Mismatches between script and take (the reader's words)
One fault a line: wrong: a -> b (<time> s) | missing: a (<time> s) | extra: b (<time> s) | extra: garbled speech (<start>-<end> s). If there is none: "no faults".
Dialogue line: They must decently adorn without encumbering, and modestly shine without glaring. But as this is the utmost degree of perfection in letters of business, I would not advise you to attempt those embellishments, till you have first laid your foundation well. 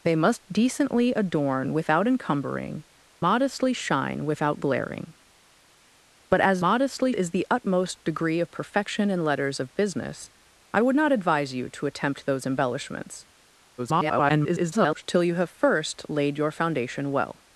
missing: and (2.8 s)
wrong: this -> modestly (6.6 s)
extra: garbled speech (13.8-15.0 s)